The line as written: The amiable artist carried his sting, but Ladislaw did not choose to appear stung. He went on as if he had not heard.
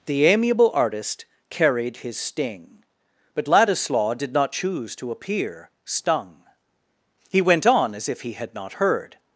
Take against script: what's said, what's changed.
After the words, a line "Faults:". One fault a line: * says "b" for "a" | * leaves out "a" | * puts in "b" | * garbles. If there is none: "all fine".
The amiable artist carried his sting, but Ladislaw did not choose to appear stung. He went on as if he had not heard.
Faults:
all fine